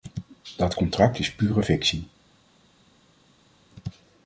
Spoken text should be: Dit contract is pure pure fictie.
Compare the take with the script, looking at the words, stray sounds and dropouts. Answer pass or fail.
fail